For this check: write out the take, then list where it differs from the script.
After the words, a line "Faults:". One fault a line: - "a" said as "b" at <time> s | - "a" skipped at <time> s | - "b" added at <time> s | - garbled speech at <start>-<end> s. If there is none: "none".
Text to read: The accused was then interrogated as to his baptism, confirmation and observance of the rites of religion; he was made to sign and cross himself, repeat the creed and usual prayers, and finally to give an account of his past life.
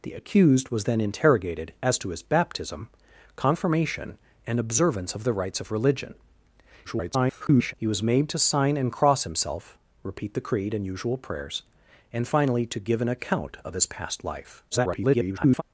The accused was then interrogated as to his baptism, confirmation and observance of the rites of religion; [garbled] he was made to sign and cross himself, repeat the creed and usual prayers, and finally to give an account of his past life. [garbled]
Faults:
- garbled speech at 6.8-7.7 s
- garbled speech at 14.7-15.6 s